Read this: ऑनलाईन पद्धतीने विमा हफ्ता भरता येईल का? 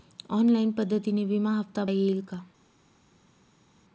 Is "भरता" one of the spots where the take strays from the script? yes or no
yes